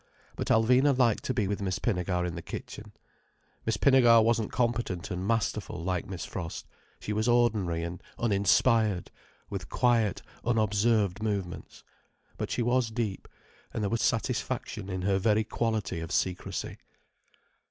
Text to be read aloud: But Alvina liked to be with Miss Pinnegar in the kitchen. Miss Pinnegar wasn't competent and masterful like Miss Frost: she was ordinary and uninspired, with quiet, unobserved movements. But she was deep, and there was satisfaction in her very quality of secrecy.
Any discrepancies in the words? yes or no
no